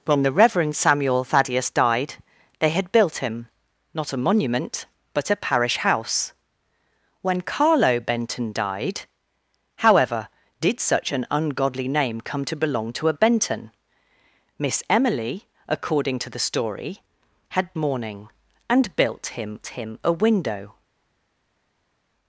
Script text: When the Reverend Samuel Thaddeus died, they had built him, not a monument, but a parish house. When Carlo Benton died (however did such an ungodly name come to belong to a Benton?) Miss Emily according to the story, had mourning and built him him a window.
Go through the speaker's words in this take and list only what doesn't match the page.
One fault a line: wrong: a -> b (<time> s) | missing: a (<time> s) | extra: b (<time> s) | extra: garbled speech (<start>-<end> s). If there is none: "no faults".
no faults